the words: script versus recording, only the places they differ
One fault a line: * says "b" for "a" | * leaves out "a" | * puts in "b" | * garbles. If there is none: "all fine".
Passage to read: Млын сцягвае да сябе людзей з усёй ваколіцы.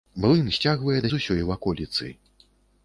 * leaves out "сябе людзей"